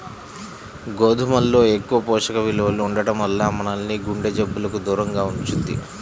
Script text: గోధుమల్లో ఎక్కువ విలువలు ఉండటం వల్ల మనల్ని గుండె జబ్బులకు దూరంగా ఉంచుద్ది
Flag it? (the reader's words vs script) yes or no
yes